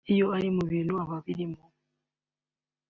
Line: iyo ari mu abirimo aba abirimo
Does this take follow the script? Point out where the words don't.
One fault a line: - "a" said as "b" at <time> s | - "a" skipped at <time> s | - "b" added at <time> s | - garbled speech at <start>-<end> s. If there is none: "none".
- "abirimo" said as "bintu" at 0.7 s